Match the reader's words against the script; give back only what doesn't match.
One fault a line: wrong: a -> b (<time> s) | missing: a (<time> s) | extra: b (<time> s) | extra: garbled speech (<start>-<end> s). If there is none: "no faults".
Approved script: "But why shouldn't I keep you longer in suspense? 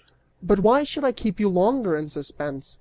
wrong: shouldn't -> should (0.8 s)